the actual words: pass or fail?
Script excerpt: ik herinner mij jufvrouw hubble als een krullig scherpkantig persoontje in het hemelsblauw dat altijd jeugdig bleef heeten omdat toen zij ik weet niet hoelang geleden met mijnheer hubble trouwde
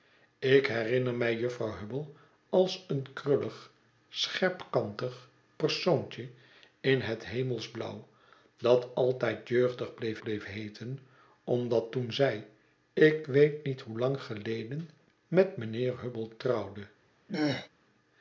fail